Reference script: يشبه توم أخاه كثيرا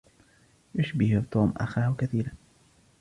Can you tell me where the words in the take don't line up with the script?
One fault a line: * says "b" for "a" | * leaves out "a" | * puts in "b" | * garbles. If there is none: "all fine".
all fine